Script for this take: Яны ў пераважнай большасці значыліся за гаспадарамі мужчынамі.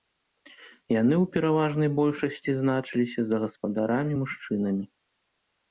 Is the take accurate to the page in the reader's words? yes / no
yes